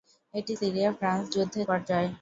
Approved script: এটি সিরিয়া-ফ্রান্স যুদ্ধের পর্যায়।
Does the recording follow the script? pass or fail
pass